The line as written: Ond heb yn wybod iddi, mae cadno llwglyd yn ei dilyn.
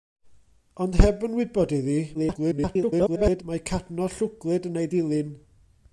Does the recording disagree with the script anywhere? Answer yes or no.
yes